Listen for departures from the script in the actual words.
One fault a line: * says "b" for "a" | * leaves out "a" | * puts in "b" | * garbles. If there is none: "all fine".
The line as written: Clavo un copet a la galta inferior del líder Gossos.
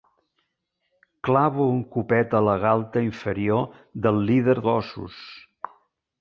all fine